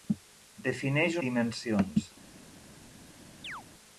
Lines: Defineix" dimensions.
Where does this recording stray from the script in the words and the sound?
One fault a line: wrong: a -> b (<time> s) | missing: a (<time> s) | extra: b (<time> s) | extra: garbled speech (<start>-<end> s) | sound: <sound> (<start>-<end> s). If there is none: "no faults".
sound: chirp (3.4-3.6 s)